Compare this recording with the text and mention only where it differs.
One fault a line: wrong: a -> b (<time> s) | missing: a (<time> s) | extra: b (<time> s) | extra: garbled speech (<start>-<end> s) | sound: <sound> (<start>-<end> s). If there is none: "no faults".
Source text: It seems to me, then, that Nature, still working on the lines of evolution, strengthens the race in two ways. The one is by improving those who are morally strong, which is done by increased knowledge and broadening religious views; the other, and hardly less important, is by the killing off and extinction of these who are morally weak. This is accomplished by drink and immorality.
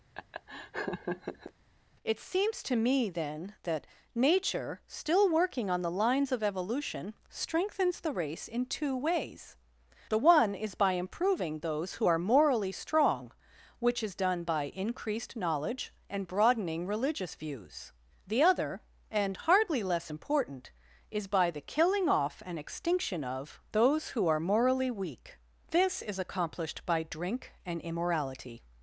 sound: laugh (0.1-1.5 s)
wrong: these -> those (23.7 s)